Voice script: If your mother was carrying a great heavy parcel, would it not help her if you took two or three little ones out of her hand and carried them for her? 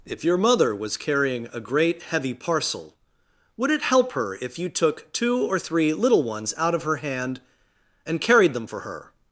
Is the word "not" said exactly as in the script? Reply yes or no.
no